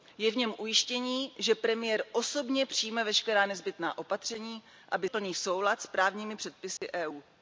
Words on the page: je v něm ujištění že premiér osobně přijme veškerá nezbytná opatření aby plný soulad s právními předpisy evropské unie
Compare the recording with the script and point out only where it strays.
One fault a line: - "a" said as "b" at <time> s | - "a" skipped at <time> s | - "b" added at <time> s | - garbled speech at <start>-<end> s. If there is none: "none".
none